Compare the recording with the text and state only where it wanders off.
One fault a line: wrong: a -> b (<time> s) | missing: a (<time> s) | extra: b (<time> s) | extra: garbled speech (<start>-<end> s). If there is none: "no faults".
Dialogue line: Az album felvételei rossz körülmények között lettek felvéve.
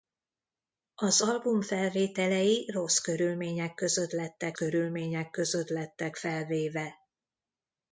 extra: körülmények között lettek (4.5 s)